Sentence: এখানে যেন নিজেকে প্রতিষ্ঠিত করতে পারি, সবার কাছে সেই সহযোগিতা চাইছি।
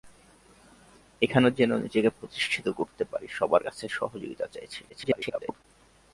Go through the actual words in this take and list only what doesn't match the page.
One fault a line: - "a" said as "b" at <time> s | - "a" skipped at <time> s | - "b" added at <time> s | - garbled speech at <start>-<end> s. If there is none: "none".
- "সেই" skipped at 3.8 s
- garbled speech at 4.9-5.6 s